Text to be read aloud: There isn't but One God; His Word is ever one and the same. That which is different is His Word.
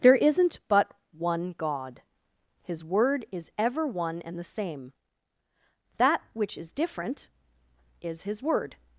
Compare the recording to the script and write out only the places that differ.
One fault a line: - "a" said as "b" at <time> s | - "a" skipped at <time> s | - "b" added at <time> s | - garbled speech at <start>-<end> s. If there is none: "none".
none